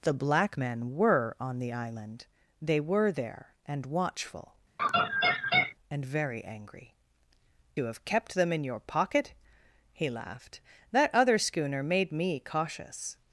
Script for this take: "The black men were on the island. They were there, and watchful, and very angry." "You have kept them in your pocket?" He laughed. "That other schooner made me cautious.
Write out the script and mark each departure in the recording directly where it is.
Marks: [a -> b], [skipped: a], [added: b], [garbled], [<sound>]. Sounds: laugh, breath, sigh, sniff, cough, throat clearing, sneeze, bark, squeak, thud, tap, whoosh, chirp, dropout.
"The black men were on the island. They were there, and watchful, [laugh] and very angry." "You have kept them in your pocket?" He laughed. "That other schooner made me cautious.